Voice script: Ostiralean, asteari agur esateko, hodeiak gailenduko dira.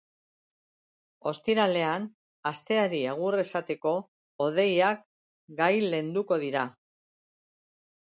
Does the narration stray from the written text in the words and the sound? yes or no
no